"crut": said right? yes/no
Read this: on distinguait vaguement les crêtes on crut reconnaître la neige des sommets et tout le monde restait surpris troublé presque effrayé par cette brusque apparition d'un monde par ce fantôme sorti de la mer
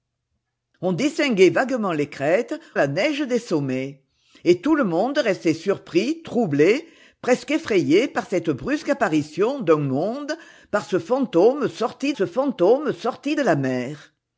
no